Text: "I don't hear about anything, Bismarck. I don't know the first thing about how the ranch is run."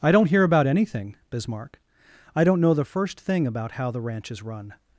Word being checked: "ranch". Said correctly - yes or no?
yes